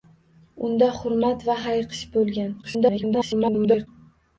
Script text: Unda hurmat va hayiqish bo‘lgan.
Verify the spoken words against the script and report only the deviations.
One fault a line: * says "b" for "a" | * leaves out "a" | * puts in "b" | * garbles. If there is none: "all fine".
* garbles